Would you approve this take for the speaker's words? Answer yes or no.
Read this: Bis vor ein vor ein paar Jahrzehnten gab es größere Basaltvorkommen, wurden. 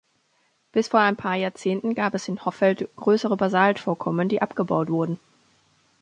no